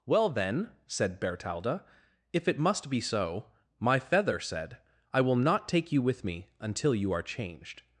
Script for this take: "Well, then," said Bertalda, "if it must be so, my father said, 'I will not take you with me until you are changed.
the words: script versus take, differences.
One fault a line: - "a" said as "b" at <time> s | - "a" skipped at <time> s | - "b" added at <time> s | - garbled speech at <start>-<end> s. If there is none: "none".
- "father" said as "feather" at 4.0 s